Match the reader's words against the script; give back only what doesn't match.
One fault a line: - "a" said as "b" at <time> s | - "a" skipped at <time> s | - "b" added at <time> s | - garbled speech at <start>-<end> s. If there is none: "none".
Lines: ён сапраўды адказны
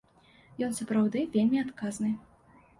- "вельмі" added at 1.4 s